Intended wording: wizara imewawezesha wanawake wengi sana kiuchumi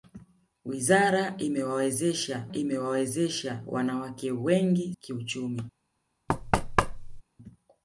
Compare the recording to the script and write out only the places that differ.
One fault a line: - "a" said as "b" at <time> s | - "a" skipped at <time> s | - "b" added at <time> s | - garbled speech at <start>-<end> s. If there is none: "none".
- "imewawezesha" added at 2.5 s
- "sana" skipped at 5.0 s